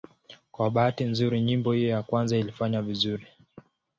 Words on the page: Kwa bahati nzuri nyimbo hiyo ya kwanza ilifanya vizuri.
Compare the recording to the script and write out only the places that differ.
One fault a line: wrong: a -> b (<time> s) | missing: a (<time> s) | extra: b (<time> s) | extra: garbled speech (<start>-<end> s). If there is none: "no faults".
no faults